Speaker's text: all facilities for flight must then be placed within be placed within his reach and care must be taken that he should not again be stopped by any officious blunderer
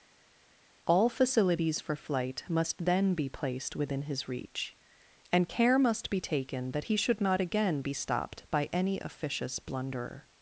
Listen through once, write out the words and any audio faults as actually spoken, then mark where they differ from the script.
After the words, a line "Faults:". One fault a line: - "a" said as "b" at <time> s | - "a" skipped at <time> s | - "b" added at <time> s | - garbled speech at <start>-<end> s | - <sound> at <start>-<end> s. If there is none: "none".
all facilities for flight must then be placed within his reach and care must be taken that he should not again be stopped by any officious blunderer
Faults:
- "be placed within" skipped at 4.0 s